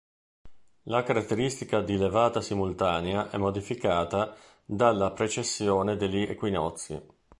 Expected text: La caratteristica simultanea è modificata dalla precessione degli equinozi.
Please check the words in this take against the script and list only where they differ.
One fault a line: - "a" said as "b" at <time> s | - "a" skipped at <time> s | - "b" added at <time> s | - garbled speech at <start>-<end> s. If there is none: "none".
- "di levata" added at 1.8 s